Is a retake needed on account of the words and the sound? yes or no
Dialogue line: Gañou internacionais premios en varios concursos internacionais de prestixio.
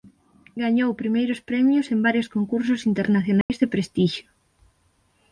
yes